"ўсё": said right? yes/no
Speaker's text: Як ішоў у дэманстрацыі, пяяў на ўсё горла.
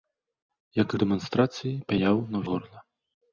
no